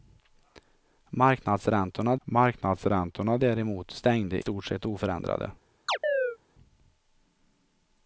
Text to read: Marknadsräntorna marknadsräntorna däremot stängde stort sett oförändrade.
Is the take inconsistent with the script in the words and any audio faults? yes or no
yes